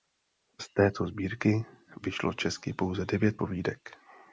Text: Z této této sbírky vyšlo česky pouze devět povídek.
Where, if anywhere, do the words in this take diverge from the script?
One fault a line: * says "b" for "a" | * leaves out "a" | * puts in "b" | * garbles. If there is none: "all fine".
* leaves out "této"